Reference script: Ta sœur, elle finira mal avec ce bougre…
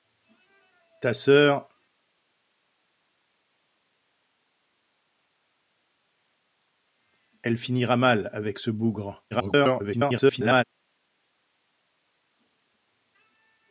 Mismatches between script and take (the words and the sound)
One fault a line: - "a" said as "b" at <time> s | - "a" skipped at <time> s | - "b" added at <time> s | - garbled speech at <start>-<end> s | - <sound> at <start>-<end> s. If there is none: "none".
- garbled speech at 9.3-10.6 s